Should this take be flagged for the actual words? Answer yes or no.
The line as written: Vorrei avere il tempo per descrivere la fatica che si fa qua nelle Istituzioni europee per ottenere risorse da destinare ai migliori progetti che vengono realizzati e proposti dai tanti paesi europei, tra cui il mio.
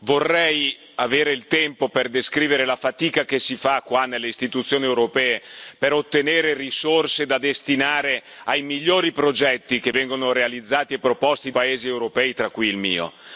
yes